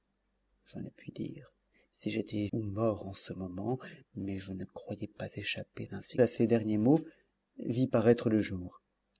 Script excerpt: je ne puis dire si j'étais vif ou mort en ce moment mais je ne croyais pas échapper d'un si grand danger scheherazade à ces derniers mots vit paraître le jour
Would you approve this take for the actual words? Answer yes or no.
no